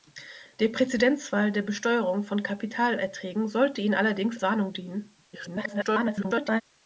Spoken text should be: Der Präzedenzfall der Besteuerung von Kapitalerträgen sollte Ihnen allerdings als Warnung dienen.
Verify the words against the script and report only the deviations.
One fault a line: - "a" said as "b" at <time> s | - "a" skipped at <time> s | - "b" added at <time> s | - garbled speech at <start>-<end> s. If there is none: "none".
- "als" skipped at 4.4 s
- garbled speech at 5.3-6.6 s